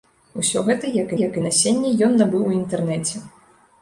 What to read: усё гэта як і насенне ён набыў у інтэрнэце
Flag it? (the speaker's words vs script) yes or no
yes